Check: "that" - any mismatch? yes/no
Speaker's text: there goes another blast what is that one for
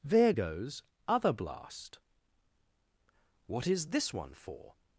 yes